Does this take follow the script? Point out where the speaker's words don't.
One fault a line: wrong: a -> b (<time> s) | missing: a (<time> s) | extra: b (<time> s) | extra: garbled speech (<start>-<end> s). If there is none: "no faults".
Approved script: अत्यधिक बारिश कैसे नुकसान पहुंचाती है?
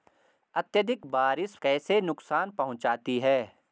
no faults